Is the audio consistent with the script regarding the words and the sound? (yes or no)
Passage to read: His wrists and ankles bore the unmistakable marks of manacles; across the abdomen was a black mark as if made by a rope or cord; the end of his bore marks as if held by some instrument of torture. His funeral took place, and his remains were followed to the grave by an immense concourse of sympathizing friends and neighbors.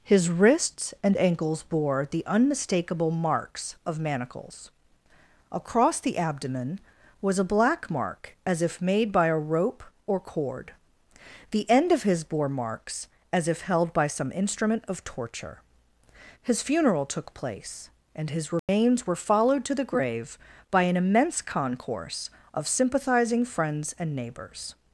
no